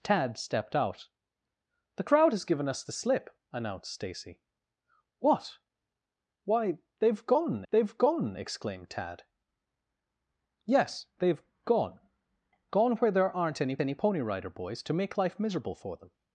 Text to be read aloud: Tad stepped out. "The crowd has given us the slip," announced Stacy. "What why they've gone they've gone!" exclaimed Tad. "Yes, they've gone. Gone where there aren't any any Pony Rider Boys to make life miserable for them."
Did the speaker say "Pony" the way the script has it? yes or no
yes